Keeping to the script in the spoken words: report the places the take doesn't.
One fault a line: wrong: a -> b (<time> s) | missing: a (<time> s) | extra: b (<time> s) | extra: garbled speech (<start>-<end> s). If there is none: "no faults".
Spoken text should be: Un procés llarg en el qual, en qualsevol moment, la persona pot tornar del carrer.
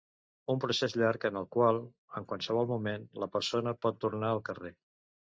wrong: del -> al (4.3 s)